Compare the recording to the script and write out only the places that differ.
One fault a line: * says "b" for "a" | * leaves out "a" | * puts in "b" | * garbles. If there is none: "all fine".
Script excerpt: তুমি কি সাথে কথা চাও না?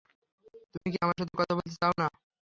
* puts in "আমার"
* puts in "বলতে"